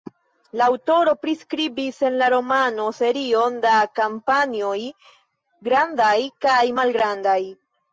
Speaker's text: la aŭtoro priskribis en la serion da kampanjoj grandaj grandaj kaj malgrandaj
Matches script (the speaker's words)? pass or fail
fail